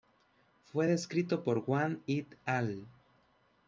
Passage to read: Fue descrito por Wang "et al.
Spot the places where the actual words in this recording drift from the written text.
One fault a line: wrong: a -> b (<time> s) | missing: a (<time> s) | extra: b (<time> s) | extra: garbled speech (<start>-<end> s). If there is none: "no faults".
no faults